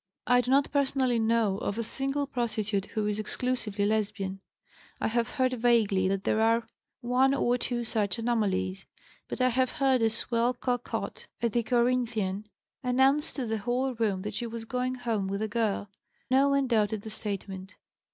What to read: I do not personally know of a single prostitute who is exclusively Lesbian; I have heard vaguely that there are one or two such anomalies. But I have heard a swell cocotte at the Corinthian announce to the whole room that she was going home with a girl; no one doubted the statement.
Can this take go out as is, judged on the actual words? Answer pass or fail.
pass